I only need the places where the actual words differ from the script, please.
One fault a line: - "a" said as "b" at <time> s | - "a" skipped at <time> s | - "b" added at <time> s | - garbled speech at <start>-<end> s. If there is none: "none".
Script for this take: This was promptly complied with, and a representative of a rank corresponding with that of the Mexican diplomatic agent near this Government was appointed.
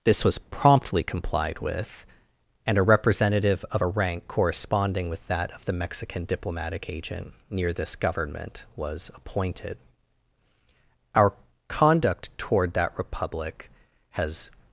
- "Our conduct toward that Republic has" added at 11.1 s